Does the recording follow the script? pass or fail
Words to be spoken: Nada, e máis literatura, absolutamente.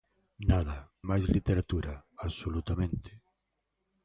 pass